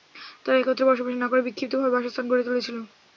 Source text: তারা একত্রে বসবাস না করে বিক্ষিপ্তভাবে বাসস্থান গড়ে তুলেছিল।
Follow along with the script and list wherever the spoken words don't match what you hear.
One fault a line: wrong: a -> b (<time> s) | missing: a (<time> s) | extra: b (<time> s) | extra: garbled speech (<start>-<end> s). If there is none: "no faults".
no faults